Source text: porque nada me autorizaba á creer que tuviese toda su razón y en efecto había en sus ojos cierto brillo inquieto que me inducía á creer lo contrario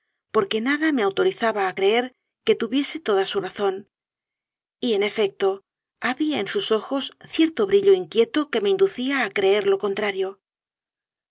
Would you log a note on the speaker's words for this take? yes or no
no